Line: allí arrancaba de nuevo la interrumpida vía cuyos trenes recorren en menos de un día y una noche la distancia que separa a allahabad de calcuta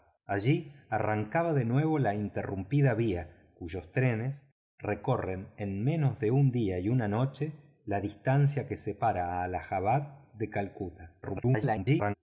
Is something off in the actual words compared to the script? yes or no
yes